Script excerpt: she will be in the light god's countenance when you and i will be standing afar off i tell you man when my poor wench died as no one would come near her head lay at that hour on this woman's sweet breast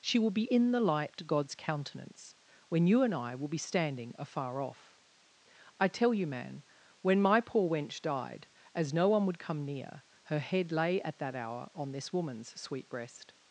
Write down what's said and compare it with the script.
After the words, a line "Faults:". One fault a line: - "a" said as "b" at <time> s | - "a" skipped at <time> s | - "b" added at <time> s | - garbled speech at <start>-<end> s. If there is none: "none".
she will be in the light god's countenance when you and i will be standing afar off i tell you man when my poor wench died as no one would come near her head lay at that hour on this woman's sweet breast
Faults:
none